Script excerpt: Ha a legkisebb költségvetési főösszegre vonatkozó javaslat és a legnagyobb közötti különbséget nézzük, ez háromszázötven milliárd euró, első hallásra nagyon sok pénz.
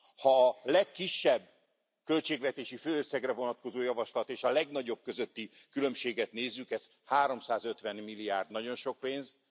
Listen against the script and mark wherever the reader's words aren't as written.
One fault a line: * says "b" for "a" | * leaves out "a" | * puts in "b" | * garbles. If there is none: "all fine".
* leaves out "euró első hallásra"